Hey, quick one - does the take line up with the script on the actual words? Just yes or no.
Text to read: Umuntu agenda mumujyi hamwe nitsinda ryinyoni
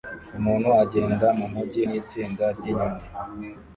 no